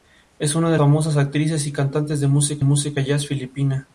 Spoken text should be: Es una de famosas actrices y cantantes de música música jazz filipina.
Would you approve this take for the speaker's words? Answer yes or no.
yes